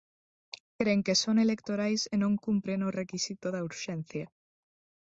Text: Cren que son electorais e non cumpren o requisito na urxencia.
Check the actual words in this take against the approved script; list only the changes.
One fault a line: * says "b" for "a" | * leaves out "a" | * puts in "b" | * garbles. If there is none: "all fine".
* says "da" for "na"